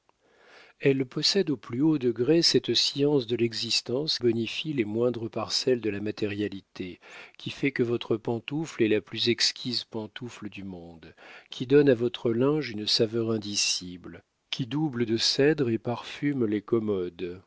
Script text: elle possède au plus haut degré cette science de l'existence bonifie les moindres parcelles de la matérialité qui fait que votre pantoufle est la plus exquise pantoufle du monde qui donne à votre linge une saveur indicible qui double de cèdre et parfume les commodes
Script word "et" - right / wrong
right